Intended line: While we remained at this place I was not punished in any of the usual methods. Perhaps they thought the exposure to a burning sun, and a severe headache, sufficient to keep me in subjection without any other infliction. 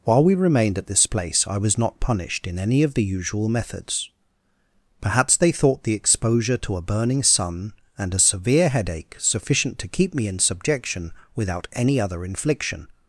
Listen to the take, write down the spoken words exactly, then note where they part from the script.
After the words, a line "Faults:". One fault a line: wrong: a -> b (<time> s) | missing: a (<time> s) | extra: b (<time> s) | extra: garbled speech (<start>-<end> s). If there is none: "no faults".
While we remained at this place I was not punished in any of the usual methods. Perhaps they thought the exposure to a burning sun, and a severe headache, sufficient to keep me in subjection without any other infliction.
Faults:
no faults